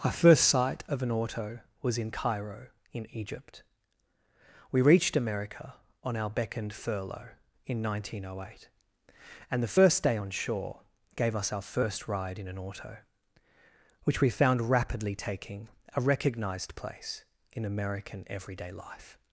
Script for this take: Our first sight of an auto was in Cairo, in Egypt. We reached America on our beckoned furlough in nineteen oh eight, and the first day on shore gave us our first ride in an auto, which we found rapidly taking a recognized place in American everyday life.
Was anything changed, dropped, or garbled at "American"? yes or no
no